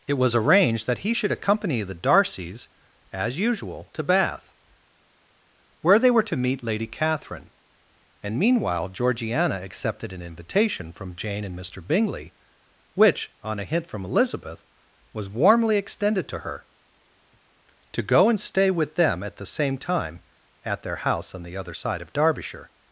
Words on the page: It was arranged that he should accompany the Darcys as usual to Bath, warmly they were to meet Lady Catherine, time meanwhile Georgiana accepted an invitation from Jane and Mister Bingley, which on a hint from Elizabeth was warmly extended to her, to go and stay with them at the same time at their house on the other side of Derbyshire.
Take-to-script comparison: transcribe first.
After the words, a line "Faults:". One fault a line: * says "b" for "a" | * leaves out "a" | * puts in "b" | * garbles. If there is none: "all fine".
It was arranged that he should accompany the Darcys as usual to Bath, where they were to meet Lady Catherine, and meanwhile Georgiana accepted an invitation from Jane and Mister Bingley, which on a hint from Elizabeth was warmly extended to her, to go and stay with them at the same time at their house on the other side of Derbyshire.
Faults:
* says "where" for "warmly"
* says "and" for "time"